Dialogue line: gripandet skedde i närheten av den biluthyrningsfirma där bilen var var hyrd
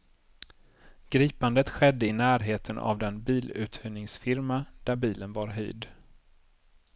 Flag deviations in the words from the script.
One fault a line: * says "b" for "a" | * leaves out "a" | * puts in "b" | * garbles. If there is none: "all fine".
* leaves out "var"